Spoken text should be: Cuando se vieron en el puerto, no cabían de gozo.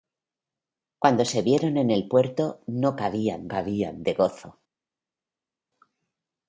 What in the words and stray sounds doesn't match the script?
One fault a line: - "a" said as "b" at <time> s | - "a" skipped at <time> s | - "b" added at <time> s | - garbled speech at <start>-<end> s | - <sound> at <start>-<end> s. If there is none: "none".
- "cabían" added at 3.5 s